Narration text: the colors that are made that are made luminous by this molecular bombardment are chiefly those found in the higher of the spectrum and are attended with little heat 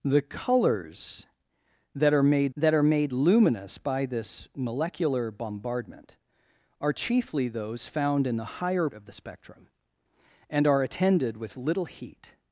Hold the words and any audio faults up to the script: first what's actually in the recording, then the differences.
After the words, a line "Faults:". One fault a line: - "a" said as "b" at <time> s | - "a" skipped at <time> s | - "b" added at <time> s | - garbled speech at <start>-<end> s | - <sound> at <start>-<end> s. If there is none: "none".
the colors that are made that are made luminous by this molecular bombardment are chiefly those found in the higher of the spectrum and are attended with little heat
Faults:
none